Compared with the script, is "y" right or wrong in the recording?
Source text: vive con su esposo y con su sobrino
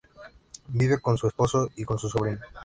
right